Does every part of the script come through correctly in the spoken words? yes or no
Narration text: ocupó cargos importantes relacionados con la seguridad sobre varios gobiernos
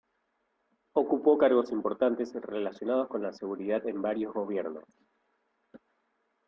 no